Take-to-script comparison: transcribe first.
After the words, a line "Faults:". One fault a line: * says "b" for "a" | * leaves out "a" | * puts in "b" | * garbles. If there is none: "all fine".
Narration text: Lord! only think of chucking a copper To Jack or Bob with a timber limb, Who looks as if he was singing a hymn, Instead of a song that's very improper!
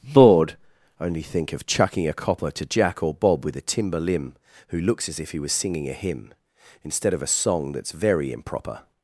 Bored! only think of chucking a copper To Jack or Bob with a timber limb, Who looks as if he was singing a hymn, Instead of a song that's very improper!
Faults:
* says "Bored" for "Lord"